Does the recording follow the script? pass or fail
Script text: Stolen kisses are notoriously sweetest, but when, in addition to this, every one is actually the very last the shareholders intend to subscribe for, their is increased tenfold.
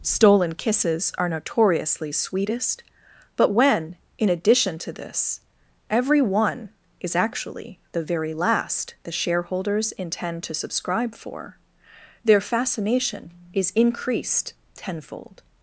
fail